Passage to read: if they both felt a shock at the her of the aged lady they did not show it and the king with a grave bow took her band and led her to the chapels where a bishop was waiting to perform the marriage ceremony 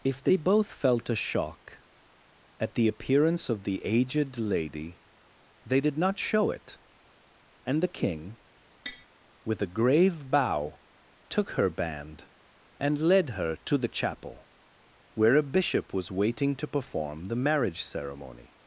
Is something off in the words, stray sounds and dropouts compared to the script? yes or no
yes